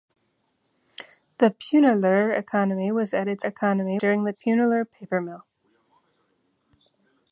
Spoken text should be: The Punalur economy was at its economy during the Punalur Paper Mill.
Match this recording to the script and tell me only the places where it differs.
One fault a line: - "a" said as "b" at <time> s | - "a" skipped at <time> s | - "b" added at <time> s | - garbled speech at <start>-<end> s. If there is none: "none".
none